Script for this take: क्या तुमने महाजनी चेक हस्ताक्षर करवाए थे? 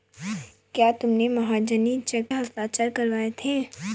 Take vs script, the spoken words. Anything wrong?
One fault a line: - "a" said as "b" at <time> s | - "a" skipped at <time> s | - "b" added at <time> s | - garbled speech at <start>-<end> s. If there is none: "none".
none